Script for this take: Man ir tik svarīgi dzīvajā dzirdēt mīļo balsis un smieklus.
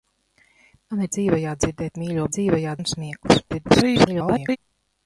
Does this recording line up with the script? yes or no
no